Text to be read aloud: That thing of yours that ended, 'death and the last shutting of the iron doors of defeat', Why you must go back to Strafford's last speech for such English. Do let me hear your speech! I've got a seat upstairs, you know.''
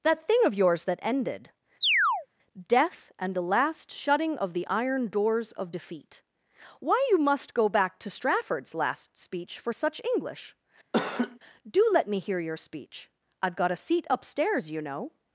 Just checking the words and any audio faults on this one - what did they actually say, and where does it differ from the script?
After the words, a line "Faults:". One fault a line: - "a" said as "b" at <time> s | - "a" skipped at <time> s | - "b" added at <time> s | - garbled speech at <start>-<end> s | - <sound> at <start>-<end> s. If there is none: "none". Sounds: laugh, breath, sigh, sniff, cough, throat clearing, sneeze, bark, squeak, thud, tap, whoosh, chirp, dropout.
That thing of yours that ended, 'death and the last shutting of the iron doors of defeat', Why you must go back to Strafford's last speech for such English. Do let me hear your speech! I've got a seat upstairs, you know.''
Faults:
- chirp at 1.8-2.3 s
- laugh at 10.9-11.4 s